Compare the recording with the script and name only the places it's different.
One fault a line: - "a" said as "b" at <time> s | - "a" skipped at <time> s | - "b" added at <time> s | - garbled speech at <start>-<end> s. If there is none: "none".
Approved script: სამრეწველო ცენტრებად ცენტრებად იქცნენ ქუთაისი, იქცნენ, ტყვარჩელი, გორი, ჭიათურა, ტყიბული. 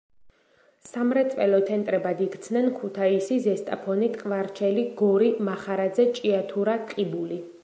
- "ცენტრებად" skipped at 2.2 s
- "იქცნენ" said as "ზესტაფონი" at 3.5 s
- "მახარაძე" added at 5.5 s